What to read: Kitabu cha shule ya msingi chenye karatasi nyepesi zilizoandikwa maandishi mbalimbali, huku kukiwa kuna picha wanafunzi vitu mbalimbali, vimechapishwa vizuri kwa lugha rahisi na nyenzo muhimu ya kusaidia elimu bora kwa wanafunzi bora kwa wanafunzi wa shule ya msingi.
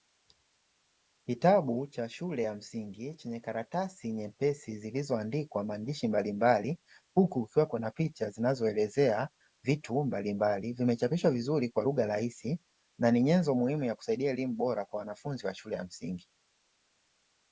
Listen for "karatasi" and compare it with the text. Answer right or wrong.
right